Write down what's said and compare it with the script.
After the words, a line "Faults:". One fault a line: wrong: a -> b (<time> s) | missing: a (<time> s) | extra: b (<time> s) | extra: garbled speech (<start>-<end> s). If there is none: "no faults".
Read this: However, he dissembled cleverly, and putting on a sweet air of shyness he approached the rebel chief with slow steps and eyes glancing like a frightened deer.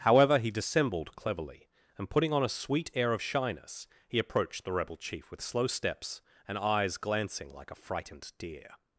However, he dissembled cleverly, and putting on a sweet air of shyness he approached the rebel chief with slow steps and eyes glancing like a frightened deer.
Faults:
no faults